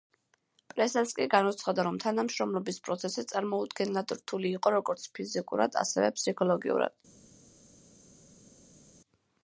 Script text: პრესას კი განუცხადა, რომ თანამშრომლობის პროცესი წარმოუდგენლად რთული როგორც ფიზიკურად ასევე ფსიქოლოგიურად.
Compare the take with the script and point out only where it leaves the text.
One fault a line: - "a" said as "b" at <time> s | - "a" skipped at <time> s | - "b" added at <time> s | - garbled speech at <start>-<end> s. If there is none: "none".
- "იყო" added at 4.6 s